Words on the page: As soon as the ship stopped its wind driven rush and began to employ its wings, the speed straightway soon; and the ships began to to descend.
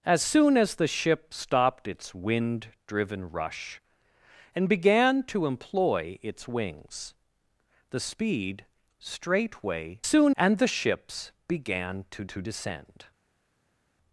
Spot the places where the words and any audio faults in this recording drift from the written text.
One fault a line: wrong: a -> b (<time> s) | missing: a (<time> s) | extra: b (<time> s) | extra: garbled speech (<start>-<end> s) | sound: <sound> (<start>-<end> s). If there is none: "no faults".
no faults